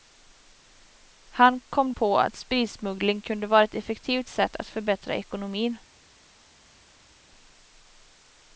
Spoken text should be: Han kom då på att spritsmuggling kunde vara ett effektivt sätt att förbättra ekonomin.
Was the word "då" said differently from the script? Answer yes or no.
yes